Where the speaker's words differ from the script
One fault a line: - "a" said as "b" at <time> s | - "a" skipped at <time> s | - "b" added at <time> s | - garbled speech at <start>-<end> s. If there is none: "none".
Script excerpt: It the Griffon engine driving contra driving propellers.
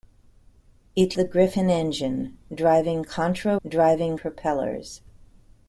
none